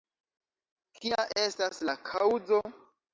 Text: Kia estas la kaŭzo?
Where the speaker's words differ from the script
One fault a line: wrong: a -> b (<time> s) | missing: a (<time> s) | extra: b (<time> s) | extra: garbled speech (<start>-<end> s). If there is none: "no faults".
no faults